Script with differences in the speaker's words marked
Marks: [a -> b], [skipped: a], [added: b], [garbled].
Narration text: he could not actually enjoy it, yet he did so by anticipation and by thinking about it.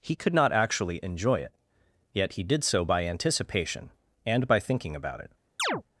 he could not actually enjoy it, yet he did so by anticipation and by thinking about it.